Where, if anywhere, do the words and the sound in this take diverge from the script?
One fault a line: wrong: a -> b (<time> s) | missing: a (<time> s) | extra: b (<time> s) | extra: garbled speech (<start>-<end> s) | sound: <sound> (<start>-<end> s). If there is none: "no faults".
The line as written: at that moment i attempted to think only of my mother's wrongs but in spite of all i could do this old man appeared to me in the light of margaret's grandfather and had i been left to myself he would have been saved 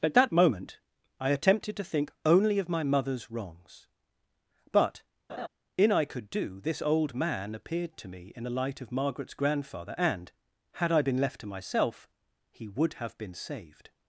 sound: laugh (5.3-5.5 s)
missing: spite of all (5.9 s)